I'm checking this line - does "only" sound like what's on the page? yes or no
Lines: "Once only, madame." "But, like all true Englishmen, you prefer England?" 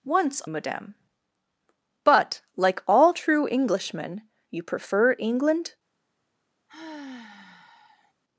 no